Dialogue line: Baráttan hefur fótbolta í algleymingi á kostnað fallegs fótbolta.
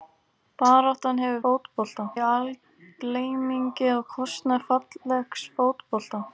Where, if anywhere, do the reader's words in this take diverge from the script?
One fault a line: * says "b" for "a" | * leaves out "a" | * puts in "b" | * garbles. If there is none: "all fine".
all fine